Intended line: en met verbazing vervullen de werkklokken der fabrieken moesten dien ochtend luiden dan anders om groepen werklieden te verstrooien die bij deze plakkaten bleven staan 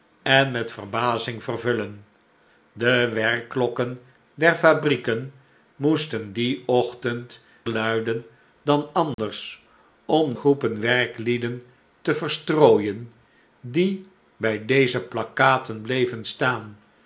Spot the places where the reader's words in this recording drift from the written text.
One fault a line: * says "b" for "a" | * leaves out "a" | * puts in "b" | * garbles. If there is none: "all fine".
all fine